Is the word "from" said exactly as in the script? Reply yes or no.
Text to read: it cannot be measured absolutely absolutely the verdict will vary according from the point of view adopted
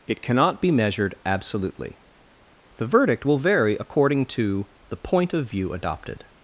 no